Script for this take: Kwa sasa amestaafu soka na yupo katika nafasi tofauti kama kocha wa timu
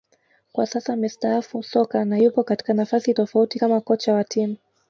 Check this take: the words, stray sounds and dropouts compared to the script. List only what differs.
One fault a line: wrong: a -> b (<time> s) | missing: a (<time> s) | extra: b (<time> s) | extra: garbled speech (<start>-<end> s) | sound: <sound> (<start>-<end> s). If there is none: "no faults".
no faults